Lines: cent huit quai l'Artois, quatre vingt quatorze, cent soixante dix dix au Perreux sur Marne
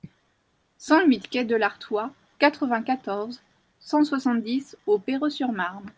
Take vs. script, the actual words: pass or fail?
fail